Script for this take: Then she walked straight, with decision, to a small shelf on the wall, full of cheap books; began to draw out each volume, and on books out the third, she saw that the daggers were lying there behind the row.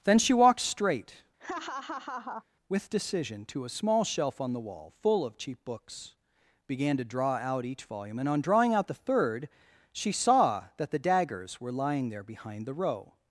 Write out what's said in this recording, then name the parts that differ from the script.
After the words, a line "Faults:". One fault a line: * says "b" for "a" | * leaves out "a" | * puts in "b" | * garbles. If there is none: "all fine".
Then she walked straight, with decision, to a small shelf on the wall, full of cheap books; began to draw out each volume, and on drawing out the third, she saw that the daggers were lying there behind the row.
Faults:
* says "drawing" for "books"